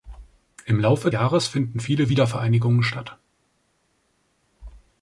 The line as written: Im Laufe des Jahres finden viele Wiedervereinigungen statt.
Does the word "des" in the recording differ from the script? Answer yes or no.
yes